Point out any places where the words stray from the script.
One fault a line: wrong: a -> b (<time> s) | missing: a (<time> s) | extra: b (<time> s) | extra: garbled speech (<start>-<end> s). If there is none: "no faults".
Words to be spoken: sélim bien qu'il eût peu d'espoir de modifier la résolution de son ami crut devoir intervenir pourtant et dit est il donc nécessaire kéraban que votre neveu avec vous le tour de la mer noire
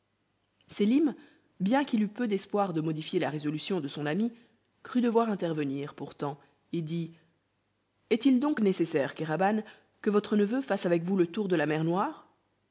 extra: fasse (10.6 s)